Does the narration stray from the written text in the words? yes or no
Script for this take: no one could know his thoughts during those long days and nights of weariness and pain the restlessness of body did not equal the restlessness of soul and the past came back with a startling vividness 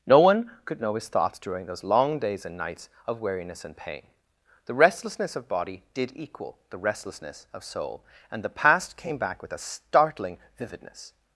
yes